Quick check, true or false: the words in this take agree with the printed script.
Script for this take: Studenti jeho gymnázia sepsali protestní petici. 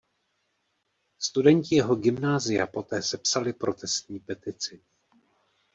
false